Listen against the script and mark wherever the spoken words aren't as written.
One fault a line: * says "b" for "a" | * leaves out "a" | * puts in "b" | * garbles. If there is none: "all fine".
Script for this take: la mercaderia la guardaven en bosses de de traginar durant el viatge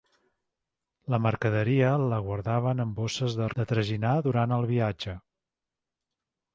all fine